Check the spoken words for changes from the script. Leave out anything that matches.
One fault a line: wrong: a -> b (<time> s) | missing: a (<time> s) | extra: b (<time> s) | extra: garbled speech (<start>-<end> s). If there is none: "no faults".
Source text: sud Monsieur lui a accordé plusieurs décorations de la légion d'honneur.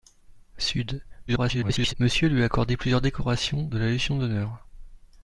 extra: garbled speech (1.3-1.9 s)